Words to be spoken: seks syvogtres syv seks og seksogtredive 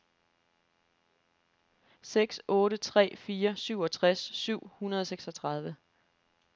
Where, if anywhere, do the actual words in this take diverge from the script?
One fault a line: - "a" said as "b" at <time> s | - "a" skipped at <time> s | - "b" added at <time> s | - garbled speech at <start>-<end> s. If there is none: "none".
- "otte tre fire" added at 2.5 s
- "seks" said as "hundrede" at 4.8 s